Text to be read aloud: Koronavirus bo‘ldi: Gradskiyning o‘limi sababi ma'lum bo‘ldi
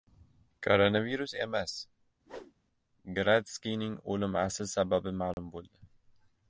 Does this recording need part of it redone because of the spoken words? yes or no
yes